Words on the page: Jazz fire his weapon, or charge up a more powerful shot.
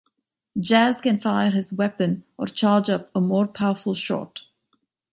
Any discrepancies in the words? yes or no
yes